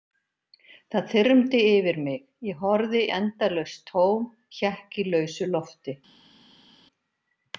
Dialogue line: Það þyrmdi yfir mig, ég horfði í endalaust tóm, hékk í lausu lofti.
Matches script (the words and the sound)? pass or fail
pass